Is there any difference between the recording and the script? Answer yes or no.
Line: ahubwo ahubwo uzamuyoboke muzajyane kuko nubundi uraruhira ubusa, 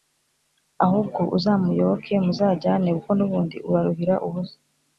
yes